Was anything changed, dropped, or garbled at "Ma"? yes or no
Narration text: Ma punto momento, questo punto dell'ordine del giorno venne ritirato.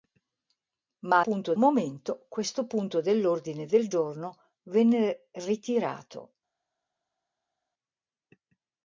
no